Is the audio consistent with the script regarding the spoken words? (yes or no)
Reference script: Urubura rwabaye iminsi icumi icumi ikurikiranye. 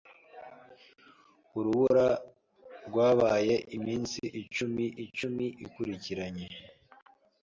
yes